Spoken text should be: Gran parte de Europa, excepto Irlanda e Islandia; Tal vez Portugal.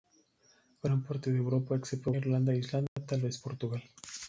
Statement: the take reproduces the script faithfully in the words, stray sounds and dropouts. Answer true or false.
false